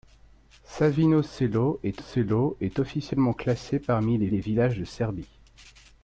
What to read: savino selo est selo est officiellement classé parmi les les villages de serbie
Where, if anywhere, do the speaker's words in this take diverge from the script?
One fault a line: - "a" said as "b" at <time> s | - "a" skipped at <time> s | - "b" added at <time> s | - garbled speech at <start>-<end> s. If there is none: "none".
none